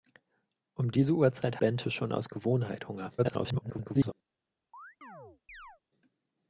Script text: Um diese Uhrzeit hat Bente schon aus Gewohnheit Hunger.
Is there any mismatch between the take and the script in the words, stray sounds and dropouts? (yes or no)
yes